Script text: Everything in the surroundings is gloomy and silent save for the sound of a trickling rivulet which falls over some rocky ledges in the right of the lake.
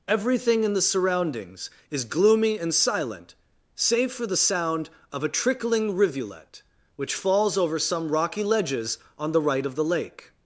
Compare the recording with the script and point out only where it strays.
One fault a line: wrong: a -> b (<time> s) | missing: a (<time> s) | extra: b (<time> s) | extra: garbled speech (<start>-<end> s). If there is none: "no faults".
wrong: in -> on (9.2 s)